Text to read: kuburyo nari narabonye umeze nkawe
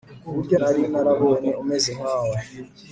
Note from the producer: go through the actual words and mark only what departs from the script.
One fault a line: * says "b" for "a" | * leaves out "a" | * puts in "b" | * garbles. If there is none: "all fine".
all fine